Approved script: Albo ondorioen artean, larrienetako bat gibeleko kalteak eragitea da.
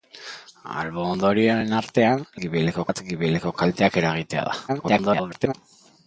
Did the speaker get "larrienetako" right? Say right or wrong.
wrong